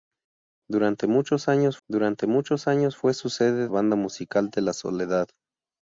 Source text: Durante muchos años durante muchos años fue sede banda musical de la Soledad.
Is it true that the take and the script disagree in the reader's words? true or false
false